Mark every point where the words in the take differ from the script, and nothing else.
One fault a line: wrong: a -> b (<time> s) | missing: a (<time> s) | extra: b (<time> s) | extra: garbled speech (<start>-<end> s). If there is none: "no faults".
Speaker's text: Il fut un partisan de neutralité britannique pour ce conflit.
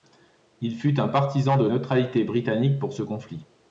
no faults